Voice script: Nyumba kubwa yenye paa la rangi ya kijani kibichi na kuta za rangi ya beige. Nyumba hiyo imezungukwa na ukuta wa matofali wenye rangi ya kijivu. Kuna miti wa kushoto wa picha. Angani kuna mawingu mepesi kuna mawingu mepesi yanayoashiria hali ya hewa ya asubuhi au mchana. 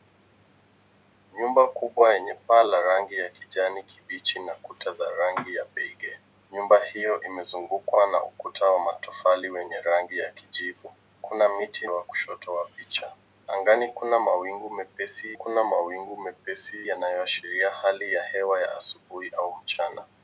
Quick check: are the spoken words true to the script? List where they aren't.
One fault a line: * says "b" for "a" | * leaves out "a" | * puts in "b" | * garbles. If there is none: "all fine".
all fine